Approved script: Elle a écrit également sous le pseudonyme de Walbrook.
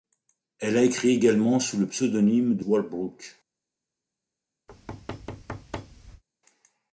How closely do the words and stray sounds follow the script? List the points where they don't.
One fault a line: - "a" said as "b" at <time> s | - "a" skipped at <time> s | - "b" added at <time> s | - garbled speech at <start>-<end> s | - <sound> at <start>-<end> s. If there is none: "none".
- thud at 4.7-6.2 s